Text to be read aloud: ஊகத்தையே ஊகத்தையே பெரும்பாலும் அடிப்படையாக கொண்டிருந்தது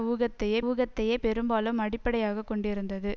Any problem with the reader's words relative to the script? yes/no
no